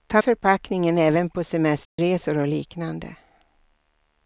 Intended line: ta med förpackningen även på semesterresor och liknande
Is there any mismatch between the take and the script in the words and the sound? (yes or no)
yes